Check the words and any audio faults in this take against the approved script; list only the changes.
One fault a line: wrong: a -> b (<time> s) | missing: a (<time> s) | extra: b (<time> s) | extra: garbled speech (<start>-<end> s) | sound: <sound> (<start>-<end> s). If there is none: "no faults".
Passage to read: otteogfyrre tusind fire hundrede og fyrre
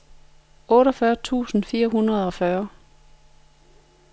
no faults